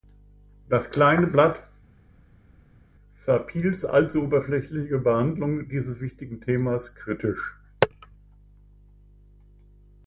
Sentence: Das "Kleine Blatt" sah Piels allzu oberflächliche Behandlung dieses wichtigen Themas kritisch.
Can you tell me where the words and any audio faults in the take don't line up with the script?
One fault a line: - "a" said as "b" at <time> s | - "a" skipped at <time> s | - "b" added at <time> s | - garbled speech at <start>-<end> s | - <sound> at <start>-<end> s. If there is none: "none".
none